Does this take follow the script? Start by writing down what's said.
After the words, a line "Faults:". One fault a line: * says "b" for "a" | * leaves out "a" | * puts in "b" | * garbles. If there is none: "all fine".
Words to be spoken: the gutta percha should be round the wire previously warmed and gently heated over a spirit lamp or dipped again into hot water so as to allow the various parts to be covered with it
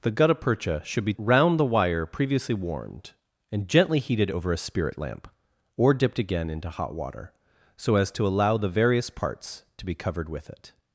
the gutta percha should be round the wire previously warmed and gently heated over a spirit lamp or dipped again into hot water so as to allow the various parts to be covered with it
Faults:
all fine